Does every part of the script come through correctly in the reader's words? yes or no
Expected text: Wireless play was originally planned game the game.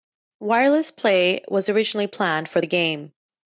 no